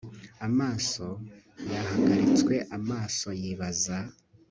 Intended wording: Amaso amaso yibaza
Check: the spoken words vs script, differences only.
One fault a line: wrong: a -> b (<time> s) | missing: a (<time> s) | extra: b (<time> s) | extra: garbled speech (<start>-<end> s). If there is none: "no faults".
extra: yahagaritswe (1.7 s)